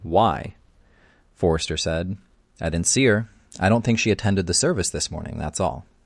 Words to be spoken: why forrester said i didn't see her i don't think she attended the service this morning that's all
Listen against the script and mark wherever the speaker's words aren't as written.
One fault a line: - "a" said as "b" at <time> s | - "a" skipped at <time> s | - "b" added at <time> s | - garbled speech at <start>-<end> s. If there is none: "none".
none